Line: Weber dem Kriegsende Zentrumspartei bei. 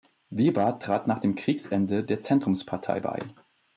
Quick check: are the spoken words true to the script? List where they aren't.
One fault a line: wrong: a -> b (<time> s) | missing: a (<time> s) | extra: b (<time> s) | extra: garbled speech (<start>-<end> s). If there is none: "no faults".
extra: trat nach (0.8 s)
extra: der (2.0 s)